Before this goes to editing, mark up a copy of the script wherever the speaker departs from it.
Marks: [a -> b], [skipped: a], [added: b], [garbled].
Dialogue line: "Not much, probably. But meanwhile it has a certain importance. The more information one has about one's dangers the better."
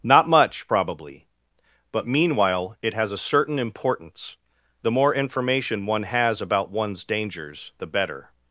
"Not much, probably. But meanwhile it has a certain importance. The more information one has about one's dangers the better."